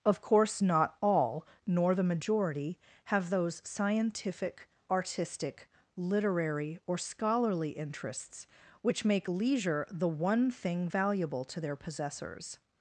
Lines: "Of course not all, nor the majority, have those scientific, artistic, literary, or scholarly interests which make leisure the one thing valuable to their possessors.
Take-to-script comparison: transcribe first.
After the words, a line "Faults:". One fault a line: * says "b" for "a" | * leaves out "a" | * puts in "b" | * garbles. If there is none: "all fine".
"Of course not all, nor the majority, have those scientific, artistic, literary, or scholarly interests which make leisure the one thing valuable to their possessors.
Faults:
all fine